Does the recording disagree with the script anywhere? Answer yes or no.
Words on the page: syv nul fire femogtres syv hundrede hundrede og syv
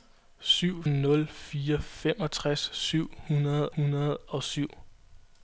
no